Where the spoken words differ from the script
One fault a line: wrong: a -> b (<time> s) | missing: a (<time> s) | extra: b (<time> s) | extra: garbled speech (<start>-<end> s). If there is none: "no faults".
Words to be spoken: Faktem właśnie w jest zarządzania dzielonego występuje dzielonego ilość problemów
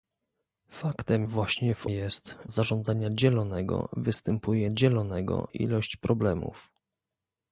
no faults